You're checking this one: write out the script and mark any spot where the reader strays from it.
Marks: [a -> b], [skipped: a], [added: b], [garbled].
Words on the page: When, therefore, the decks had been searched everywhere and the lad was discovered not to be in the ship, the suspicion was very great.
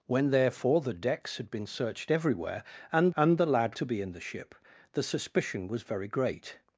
When, therefore, the decks had been searched everywhere and [added: and] the lad [skipped: was discovered not] to be in the ship, the suspicion was very great.